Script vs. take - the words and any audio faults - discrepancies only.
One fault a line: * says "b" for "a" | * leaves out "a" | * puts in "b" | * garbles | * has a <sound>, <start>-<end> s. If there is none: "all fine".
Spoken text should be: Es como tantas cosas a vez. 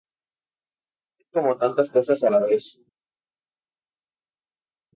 * puts in "la"